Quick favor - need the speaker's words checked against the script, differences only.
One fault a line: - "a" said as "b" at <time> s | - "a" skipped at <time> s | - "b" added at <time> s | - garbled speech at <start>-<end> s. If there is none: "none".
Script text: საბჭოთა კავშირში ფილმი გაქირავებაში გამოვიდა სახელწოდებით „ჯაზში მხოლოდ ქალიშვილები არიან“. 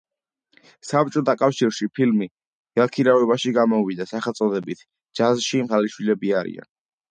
- "მხოლოდ" skipped at 5.6 s